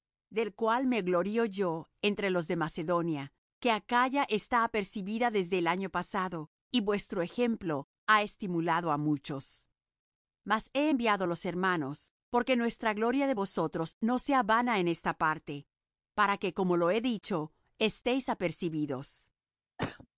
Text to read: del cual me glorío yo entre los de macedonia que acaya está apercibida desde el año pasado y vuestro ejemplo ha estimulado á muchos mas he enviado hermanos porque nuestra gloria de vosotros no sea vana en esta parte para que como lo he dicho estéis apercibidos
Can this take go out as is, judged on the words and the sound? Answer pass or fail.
fail